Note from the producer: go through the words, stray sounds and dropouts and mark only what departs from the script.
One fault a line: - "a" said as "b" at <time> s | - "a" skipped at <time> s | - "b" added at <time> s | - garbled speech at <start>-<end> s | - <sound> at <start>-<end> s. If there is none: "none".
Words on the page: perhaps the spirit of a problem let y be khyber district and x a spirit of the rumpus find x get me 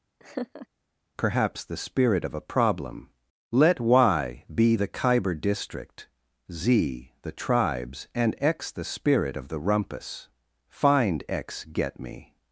- laugh at 0.2-0.7 s
- "the" added at 4.7 s
- "z the tribes" added at 6.5 s
- "a" said as "the" at 8.7 s